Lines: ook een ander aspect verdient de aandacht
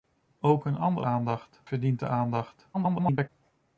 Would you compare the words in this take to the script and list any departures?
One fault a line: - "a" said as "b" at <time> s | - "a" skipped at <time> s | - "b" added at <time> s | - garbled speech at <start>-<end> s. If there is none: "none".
- "aspect" said as "aandacht" at 1.0 s
- garbled speech at 2.7-3.3 s